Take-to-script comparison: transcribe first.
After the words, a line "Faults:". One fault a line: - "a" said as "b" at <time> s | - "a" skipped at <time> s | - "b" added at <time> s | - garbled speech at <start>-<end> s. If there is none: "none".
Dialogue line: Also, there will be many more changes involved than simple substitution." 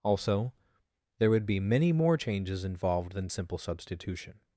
Also, there would be many more changes involved than simple substitution."
Faults:
- "will" said as "would" at 1.3 s